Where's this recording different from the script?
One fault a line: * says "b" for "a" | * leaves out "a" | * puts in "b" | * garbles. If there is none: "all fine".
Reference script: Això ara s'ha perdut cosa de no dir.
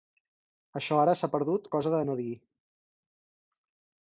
all fine